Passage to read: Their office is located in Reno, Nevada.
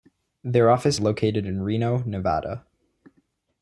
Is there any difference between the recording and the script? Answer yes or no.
yes